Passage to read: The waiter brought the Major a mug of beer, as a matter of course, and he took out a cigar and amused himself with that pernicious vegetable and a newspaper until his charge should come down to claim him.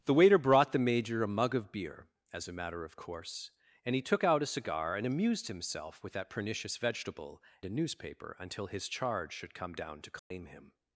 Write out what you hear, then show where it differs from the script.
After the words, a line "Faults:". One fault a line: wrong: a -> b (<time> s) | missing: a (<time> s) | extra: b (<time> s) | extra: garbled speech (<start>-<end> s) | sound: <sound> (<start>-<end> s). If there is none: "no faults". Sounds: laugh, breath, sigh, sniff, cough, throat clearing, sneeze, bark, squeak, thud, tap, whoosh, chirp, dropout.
The waiter brought the Major a mug of beer, as a matter of course, and he took out a cigar and amused himself with that pernicious vegetable a newspaper until his charge should come down to claim him.
Faults:
missing: and (7.4 s)
sound: dropout (10.2-10.3 s)